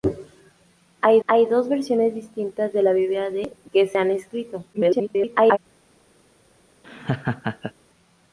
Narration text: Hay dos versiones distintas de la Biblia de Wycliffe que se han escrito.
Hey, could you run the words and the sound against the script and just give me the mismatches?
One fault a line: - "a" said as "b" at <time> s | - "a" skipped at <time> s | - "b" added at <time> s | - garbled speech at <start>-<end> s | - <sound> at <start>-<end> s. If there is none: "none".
- "hay" added at 1.3 s
- "Wycliffe" skipped at 3.5 s
- garbled speech at 4.7-5.6 s
- laugh at 6.8-7.7 s